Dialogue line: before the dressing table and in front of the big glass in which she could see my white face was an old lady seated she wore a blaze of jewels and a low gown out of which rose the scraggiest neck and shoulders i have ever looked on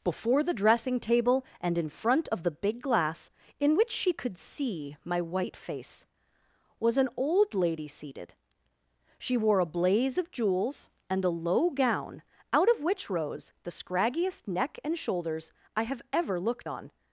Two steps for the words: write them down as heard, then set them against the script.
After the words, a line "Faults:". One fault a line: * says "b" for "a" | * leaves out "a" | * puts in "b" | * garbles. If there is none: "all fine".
before the dressing table and in front of the big glass in which she could see my white face was an old lady seated she wore a blaze of jewels and a low gown out of which rose the scraggiest neck and shoulders i have ever looked on
Faults:
all fine